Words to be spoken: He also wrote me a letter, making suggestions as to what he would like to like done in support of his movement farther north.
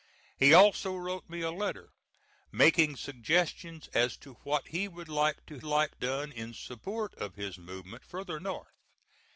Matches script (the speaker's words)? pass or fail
pass